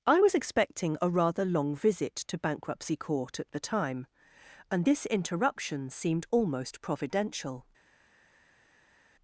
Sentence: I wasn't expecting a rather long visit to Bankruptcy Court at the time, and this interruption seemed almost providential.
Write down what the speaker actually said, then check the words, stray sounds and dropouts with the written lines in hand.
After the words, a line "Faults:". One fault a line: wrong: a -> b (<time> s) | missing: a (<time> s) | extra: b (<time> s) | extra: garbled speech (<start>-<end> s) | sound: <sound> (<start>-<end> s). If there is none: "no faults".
I was expecting a rather long visit to Bankruptcy Court at the time, and this interruption seemed almost providential.
Faults:
wrong: wasn't -> was (0.2 s)